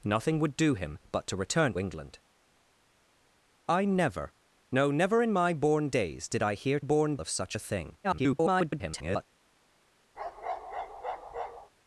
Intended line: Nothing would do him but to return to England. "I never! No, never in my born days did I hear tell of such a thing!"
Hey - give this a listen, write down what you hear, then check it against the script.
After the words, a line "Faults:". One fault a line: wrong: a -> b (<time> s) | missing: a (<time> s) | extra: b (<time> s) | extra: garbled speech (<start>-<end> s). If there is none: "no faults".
Nothing would do him but to return England. "I never! No, never in my born days did I hear born of such a thing!" [garbled]
Faults:
missing: to (1.7 s)
wrong: tell -> born (6.8 s)
extra: garbled speech (8.0-9.3 s)